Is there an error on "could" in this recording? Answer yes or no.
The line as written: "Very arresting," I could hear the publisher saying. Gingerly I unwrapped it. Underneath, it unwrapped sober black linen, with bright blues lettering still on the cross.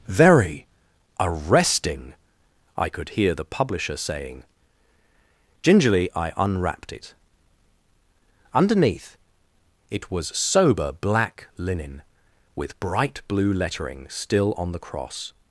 no